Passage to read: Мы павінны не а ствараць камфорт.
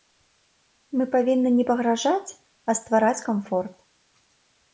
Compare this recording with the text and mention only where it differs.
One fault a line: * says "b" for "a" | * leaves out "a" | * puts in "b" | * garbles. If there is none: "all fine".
* puts in "пагражаць"